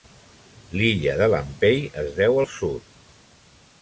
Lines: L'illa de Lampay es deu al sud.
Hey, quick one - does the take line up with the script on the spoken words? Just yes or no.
yes